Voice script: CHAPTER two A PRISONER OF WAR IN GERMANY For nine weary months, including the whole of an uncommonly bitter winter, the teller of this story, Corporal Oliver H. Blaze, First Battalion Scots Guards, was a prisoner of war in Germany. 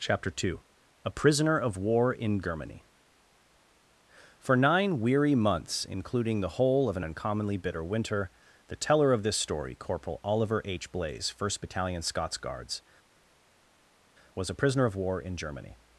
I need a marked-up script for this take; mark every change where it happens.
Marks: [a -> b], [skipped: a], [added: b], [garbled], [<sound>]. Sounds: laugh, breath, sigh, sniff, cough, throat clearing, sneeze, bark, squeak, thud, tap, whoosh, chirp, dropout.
CHAPTER two A PRISONER OF WAR IN GERMANY For nine weary months, including the whole of an uncommonly bitter winter, the teller of this story, Corporal Oliver H. Blaze, First Battalion Scots Guards, was a prisoner of war in Germany.